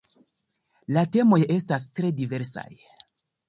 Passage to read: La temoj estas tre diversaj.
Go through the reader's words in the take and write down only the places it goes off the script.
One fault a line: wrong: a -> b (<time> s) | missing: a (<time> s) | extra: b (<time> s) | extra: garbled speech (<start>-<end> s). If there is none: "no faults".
no faults